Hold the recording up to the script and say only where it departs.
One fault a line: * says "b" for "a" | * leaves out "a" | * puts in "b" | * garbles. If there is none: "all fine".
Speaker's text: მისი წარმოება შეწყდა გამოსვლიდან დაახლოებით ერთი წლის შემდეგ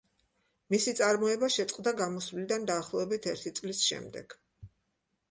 all fine